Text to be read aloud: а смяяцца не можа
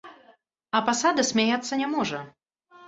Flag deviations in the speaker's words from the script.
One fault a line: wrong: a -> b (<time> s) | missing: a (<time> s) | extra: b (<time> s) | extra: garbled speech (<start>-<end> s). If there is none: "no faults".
extra: пасада (0.9 s)